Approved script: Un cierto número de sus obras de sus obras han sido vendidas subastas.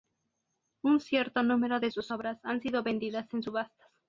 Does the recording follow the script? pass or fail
fail